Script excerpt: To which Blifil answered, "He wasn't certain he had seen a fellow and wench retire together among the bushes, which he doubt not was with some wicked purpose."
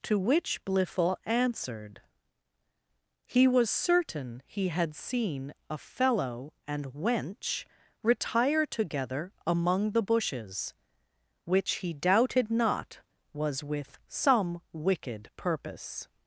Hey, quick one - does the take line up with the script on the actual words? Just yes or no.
no